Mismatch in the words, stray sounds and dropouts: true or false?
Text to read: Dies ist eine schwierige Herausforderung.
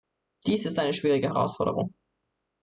false